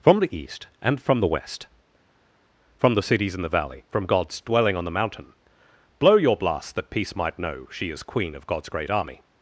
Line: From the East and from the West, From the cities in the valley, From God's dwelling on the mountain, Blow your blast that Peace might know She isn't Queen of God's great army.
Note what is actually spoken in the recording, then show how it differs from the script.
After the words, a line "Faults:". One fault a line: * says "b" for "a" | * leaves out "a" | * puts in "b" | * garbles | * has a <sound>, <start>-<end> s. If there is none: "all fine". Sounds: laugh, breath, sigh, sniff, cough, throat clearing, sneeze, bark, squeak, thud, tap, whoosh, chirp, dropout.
From the East and from the West, From the cities in the valley, From God's dwelling on the mountain, Blow your blast that Peace might know She is Queen of God's great army.
Faults:
* says "is" for "isn't"